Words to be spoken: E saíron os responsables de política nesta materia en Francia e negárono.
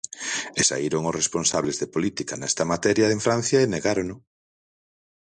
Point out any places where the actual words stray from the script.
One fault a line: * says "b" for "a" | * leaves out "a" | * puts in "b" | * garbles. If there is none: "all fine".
all fine